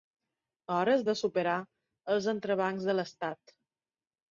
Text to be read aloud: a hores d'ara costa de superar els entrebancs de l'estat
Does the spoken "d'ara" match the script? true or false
false